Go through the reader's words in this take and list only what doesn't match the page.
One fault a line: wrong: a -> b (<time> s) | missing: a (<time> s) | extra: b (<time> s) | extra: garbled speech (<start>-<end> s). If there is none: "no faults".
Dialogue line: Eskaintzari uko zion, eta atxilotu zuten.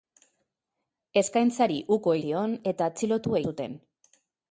no faults